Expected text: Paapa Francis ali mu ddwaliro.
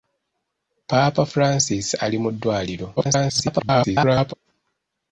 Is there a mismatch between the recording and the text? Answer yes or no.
yes